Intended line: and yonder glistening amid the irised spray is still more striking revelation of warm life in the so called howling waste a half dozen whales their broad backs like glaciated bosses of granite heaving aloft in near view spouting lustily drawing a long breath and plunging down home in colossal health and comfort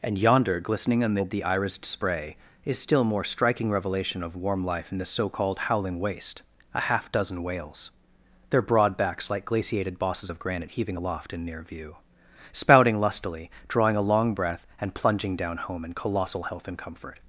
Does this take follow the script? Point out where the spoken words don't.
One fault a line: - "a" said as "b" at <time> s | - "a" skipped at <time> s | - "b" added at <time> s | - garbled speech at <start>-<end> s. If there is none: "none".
none